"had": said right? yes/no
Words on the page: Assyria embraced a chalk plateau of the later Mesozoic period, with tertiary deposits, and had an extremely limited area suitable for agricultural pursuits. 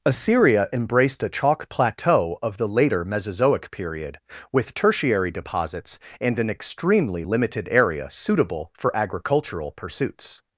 no